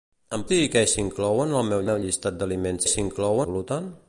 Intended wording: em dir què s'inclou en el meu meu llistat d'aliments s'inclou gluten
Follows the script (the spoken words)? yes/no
yes